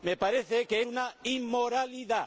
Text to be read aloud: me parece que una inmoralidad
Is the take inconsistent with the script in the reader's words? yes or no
no